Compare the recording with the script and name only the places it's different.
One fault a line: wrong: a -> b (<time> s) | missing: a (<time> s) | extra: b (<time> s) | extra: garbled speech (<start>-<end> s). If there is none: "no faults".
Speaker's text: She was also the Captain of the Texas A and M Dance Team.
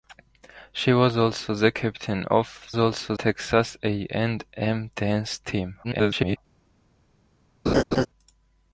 wrong: the -> also (2.8 s)
extra: garbled speech (5.8-6.4 s)